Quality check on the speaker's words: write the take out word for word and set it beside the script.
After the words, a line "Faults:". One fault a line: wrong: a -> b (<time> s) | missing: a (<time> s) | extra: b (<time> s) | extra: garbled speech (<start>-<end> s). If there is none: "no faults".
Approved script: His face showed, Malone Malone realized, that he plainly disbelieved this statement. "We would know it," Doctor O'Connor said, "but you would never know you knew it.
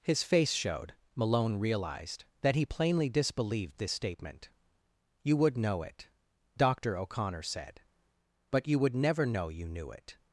His face showed, Malone realized, that he plainly disbelieved this statement. "You would know it," Doctor O'Connor said, "but you would never know you knew it.
Faults:
missing: Malone (1.6 s)
wrong: We -> You (5.2 s)